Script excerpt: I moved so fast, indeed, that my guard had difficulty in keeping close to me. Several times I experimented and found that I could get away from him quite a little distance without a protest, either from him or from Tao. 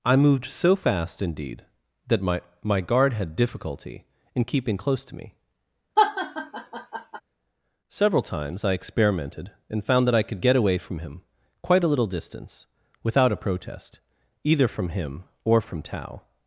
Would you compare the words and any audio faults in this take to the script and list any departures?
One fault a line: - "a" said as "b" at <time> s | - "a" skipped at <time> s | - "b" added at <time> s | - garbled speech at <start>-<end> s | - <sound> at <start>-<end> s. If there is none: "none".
- "my" added at 2.6 s
- laugh at 6.0-7.2 s